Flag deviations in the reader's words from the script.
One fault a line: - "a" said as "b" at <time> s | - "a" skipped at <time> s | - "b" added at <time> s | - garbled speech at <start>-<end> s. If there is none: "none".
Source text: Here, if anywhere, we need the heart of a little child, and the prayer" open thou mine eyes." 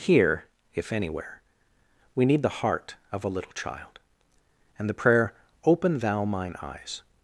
none